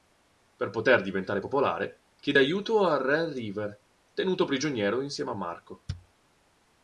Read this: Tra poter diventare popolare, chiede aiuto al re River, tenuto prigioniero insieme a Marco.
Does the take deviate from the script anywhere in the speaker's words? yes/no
yes